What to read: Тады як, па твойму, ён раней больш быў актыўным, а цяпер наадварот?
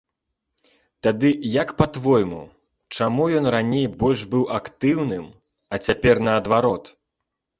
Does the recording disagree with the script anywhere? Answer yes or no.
yes